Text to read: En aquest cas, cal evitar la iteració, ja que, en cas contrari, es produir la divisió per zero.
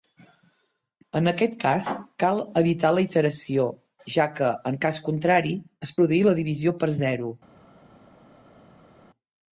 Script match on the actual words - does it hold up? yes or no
yes